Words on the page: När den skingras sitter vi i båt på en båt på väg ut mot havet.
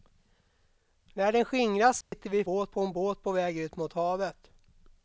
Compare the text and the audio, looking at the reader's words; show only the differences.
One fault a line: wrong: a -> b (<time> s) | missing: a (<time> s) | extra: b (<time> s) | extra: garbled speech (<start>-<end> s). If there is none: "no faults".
no faults